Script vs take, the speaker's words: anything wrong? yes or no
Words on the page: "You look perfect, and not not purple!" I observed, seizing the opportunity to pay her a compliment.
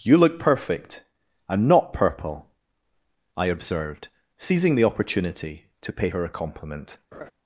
yes